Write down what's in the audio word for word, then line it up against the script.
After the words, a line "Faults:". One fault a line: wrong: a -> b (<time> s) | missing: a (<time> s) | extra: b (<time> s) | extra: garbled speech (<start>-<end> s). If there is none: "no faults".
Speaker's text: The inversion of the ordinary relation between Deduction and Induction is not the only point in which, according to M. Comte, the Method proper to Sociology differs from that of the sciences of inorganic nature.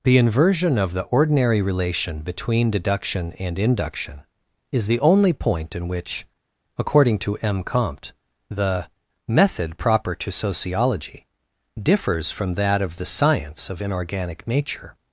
The inversion of the ordinary relation between Deduction and Induction is the only point in which, according to M. Comte, the Method proper to Sociology differs from that of the science of inorganic nature.
Faults:
missing: not (4.9 s)
wrong: sciences -> science (13.1 s)